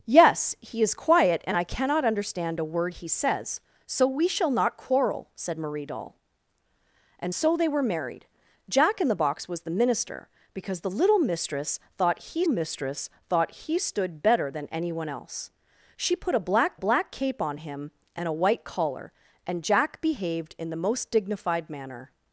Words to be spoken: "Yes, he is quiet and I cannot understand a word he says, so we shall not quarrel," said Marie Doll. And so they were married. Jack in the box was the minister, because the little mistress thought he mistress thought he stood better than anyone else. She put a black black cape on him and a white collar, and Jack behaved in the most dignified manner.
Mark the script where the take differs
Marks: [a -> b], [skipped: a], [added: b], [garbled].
"Yes, he is quiet and I cannot understand a word he says, so we shall not quarrel," said Marie Doll. And so they were married. Jack in the box was the minister, because the little mistress thought he mistress thought he stood better than anyone else. She put a black black cape on him and a white collar, and Jack behaved in the most dignified manner.